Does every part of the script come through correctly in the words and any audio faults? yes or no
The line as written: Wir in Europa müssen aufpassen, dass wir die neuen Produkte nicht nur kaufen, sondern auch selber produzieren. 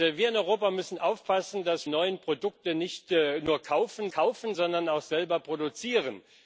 no